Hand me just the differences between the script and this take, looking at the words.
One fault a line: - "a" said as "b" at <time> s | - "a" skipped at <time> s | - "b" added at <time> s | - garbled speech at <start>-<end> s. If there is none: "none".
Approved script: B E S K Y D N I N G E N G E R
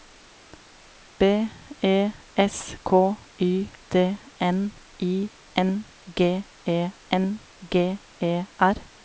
none